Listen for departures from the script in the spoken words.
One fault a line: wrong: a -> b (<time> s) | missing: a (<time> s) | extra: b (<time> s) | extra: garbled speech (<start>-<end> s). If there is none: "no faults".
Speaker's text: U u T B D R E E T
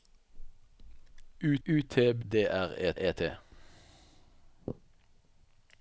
no faults